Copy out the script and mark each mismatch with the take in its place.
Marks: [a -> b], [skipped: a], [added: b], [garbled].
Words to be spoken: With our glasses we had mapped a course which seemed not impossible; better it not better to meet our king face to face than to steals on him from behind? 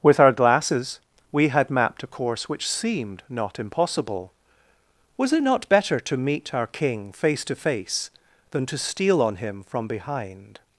With our glasses we had mapped a course which seemed not impossible; [better -> was] it not better to meet our king face to face than to [steals -> steal] on him from behind?